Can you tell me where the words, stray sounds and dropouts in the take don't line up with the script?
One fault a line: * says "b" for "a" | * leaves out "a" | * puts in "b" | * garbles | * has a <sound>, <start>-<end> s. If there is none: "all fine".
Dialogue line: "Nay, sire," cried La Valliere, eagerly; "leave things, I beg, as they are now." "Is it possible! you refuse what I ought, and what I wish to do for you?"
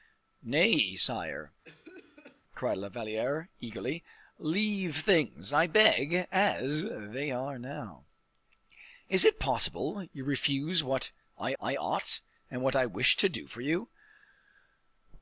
* has a cough, 1.6-2.4 s
* puts in "I"